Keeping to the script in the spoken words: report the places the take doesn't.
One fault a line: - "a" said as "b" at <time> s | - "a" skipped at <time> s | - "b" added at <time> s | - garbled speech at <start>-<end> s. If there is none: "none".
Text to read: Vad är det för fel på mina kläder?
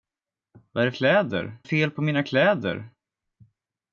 - "för" said as "kläder" at 0.9 s